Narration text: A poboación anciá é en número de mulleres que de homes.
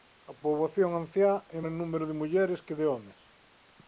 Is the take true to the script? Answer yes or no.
yes